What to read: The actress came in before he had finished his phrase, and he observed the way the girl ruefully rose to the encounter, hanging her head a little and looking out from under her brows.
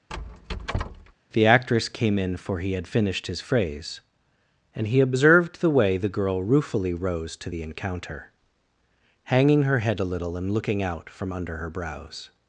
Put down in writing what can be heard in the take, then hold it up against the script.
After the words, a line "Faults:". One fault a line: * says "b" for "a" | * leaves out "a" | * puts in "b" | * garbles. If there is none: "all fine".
The actress came in for he had finished his phrase, and he observed the way the girl ruefully rose to the encounter, hanging her head a little and looking out from under her brows.
Faults:
* says "for" for "before"